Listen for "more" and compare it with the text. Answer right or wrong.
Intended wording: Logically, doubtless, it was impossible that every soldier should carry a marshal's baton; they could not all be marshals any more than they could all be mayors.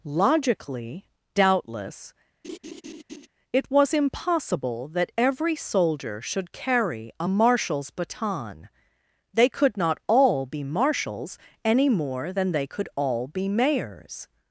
right